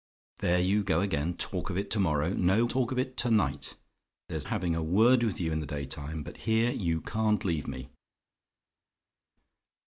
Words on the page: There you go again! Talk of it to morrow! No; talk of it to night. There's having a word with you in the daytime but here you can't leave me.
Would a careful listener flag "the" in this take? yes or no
no